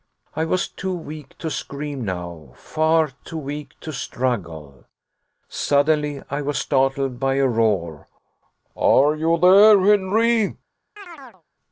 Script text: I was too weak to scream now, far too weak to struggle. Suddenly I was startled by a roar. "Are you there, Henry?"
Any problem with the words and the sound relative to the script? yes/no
yes